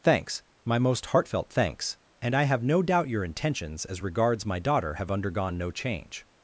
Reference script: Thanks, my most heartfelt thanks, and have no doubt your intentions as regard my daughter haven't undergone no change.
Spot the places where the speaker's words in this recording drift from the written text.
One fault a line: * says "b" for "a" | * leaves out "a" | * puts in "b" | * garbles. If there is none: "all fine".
* puts in "I"
* says "regards" for "regard"
* says "have" for "haven't"